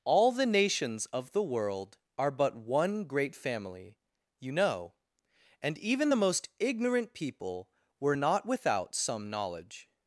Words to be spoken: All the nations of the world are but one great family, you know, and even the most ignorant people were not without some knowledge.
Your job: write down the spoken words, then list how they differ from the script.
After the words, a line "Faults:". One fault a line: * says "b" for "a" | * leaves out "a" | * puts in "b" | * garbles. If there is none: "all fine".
All the nations of the world are but one great family, you know, and even the most ignorant people were not without some knowledge.
Faults:
all fine